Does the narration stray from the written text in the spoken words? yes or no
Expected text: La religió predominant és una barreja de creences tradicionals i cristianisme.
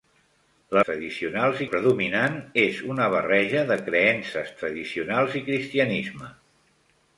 yes